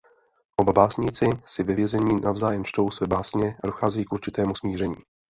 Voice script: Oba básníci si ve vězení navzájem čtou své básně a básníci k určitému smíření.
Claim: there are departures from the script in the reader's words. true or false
true